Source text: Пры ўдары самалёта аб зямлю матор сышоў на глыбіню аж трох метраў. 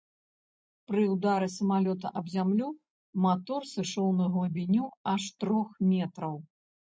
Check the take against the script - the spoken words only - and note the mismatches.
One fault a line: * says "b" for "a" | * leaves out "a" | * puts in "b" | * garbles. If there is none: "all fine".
all fine